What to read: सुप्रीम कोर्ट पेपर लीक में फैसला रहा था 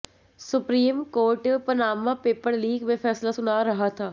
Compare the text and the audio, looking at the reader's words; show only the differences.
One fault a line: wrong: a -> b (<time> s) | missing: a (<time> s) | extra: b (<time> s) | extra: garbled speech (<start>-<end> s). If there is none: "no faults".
extra: पनामा (1.7 s)
extra: सुना (3.3 s)